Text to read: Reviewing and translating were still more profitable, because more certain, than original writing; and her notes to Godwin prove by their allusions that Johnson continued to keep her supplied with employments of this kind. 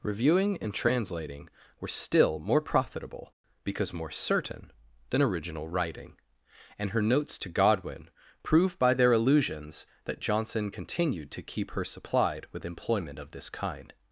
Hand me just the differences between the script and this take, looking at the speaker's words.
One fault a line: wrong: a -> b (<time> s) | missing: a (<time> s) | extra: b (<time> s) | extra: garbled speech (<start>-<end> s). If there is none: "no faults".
wrong: employments -> employment (12.6 s)